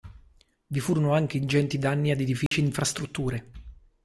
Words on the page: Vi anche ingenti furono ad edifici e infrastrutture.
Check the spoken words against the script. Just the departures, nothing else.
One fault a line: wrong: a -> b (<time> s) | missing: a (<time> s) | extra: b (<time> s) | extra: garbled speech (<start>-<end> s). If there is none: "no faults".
extra: furono (0.8 s)
wrong: furono -> danni (1.8 s)